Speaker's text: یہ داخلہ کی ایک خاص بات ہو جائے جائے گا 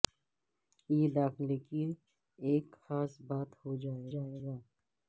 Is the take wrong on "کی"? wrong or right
right